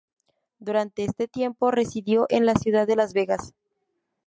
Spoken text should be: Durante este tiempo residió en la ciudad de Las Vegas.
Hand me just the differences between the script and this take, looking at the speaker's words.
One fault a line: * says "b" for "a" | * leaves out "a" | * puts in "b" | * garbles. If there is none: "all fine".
all fine